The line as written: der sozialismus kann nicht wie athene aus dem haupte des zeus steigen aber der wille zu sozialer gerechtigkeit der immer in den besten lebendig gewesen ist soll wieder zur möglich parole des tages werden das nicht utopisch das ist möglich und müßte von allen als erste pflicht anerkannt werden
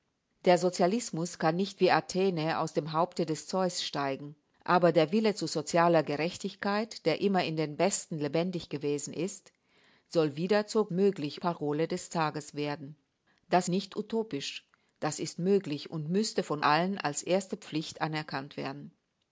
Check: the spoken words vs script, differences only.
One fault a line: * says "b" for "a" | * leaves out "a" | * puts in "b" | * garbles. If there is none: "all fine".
all fine